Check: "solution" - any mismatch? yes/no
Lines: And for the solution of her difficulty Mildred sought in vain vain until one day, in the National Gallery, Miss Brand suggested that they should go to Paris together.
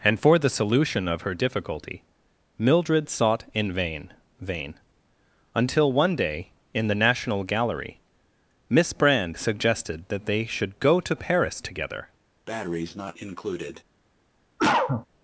no